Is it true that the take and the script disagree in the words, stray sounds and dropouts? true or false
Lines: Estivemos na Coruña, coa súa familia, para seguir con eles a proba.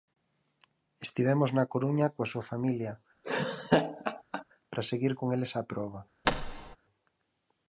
true